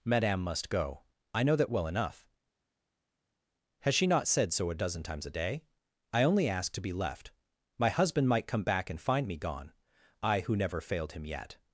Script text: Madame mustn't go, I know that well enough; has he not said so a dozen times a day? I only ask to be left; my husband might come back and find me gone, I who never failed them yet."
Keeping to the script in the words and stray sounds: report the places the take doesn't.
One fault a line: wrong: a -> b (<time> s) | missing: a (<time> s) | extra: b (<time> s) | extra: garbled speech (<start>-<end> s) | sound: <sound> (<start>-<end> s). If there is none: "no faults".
wrong: mustn't -> must (0.4 s)
wrong: he -> she (4.0 s)
wrong: them -> him (11.1 s)